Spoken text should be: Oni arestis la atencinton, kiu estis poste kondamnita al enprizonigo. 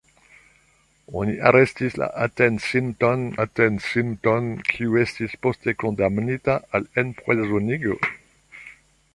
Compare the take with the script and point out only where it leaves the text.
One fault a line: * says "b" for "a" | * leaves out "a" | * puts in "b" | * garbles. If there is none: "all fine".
* puts in "atencinton"